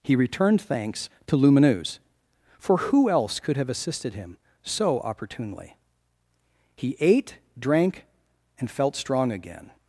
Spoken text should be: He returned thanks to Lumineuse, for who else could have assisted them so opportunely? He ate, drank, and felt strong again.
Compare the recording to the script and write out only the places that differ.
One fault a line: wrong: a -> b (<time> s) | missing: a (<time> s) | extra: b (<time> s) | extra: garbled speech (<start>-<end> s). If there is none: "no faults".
wrong: them -> him (4.1 s)